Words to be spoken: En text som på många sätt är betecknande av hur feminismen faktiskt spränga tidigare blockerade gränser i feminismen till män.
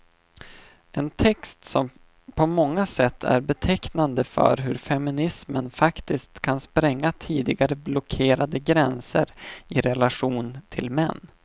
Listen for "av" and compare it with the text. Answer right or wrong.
wrong